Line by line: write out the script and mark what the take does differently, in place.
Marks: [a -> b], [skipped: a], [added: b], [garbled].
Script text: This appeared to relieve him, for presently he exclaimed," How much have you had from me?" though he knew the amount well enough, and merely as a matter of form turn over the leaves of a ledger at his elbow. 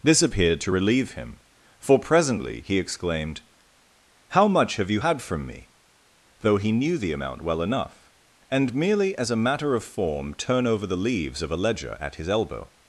This appeared to relieve him, for presently he exclaimed," How much have you had from me?" though he knew the amount well enough, and merely as a matter of form turn over the leaves of a ledger at his elbow.